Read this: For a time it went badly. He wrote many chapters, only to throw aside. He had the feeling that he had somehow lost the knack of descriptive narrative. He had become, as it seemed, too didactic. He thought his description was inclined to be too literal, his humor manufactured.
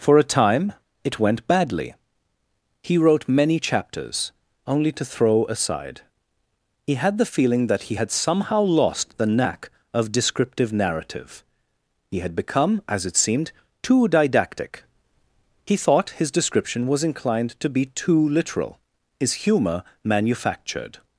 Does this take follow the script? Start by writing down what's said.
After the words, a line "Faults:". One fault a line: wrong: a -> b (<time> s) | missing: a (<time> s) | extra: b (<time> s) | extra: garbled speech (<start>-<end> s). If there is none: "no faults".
For a time it went badly. He wrote many chapters, only to throw aside. He had the feeling that he had somehow lost the knack of descriptive narrative. He had become, as it seemed, too didactic. He thought his description was inclined to be too literal, his humor manufactured.
Faults:
no faults